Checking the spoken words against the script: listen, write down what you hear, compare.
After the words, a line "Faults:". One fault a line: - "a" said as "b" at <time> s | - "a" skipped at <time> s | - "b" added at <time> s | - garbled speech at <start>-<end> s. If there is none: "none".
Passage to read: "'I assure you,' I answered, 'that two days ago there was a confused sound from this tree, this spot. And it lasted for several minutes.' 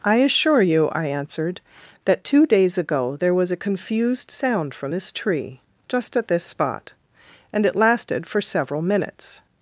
"'I assure you,' I answered, 'that two days ago there was a confused sound from this tree, just at this spot. And it lasted for several minutes.'
Faults:
- "just at" added at 5.9 s